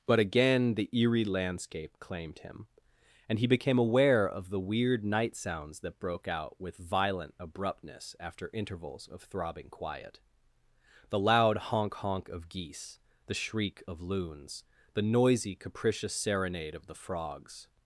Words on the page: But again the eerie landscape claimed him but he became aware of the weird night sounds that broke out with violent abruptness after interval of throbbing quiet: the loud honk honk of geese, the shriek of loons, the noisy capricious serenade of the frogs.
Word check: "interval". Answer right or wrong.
wrong